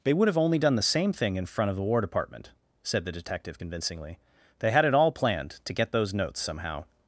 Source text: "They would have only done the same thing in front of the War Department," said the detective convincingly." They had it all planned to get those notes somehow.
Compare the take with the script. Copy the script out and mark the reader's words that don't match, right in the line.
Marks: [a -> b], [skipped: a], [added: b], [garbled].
"They would have only done the same thing in front of the War Department," said the detective convincingly." They had it all planned to get those notes somehow.